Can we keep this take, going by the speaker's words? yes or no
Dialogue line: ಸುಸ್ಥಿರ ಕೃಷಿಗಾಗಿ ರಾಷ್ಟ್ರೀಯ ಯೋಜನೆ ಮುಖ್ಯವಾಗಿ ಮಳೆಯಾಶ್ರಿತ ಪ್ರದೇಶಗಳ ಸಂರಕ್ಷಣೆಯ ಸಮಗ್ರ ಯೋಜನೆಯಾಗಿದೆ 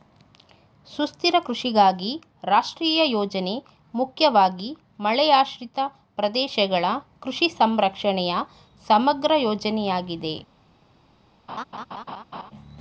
no